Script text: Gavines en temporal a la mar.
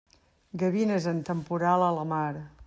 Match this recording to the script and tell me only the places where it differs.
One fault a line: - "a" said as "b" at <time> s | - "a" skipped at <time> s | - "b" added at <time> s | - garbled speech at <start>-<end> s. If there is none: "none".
none